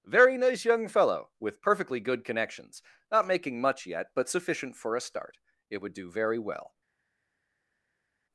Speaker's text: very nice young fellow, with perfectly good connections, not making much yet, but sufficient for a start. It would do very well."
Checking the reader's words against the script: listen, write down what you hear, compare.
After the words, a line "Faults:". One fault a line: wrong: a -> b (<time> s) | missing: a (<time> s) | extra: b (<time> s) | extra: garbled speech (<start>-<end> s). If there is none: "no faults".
very nice young fellow, with perfectly good connections, not making much yet, but sufficient for a start. It would do very well."
Faults:
no faults